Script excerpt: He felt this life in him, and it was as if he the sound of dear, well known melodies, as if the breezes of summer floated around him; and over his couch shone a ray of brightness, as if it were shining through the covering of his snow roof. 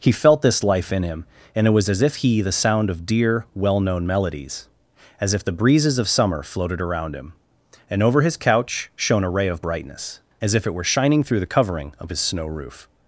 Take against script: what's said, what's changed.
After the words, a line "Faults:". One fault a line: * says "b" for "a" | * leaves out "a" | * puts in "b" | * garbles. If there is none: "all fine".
He felt this life in him, and it was as if he the sound of dear, well known melodies, as if the breezes of summer floated around him; and over his couch shone a ray of brightness, as if it were shining through the covering of his snow roof.
Faults:
all fine